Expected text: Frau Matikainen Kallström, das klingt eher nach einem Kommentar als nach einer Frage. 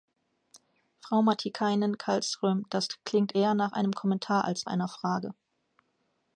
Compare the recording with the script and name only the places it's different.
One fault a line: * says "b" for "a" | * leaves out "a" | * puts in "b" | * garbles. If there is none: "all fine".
* leaves out "nach"